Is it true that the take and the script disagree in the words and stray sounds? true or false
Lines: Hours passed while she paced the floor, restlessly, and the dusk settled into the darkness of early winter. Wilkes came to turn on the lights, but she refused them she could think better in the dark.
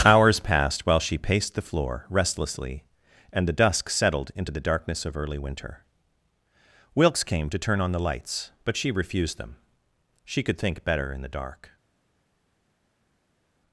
false